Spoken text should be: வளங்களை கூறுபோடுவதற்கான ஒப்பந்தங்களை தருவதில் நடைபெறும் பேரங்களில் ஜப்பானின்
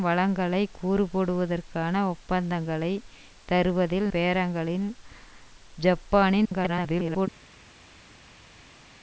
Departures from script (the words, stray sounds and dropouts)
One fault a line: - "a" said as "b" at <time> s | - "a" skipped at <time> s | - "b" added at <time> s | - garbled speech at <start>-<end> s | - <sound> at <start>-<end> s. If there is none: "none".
- "நடைபெறும்" skipped at 4.1 s
- garbled speech at 6.4-7.3 s